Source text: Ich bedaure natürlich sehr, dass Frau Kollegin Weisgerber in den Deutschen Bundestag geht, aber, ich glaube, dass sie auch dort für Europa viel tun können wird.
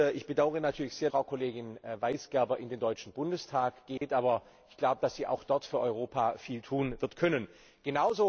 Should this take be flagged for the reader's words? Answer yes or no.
yes